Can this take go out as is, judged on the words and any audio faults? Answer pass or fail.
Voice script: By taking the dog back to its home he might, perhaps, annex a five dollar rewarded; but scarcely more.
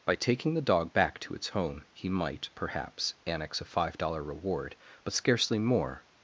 fail